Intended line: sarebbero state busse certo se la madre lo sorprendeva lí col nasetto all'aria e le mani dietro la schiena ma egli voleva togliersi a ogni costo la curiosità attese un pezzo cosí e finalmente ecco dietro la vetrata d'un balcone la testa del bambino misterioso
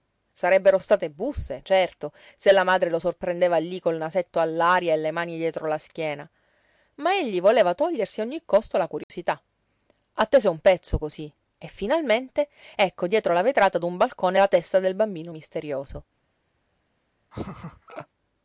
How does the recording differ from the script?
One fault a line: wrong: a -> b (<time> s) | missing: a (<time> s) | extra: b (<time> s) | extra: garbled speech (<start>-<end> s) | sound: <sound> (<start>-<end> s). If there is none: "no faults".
sound: dropout (9.0-9.1 s)
sound: laugh (17.3-18.1 s)